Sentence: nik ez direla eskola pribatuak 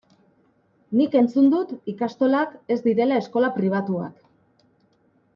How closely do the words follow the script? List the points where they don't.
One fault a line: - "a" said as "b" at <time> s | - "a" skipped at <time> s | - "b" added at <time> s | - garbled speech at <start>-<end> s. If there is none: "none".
- "entzun dut ikastolak" added at 1.2 s